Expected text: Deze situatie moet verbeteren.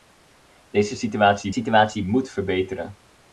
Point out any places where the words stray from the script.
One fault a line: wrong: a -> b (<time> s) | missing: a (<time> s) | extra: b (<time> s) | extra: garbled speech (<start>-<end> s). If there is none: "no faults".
extra: situatie (1.5 s)